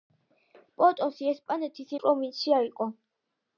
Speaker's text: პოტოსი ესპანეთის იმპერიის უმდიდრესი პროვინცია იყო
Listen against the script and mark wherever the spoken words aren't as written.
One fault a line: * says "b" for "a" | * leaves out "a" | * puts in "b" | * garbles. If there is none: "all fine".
* leaves out "იმპერიის უმდიდრესი"